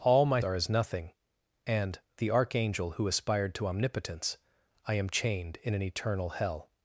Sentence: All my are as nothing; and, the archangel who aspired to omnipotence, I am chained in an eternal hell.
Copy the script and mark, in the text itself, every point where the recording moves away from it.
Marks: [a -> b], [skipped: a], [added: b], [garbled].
All my are as nothing; and, the archangel who aspired to omnipotence, I am chained in an eternal hell.